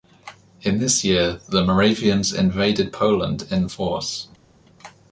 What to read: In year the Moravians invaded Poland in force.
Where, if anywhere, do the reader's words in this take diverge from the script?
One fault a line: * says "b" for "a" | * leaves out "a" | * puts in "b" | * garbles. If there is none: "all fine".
* puts in "this"